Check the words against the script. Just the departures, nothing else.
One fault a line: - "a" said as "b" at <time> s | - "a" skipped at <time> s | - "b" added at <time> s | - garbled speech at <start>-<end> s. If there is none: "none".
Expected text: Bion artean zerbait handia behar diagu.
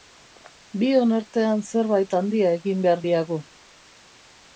- "egin" added at 2.6 s